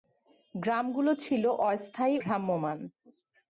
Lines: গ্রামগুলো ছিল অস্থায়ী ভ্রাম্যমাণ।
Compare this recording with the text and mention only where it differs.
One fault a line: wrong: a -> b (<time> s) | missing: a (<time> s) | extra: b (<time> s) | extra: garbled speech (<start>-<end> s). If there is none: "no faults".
no faults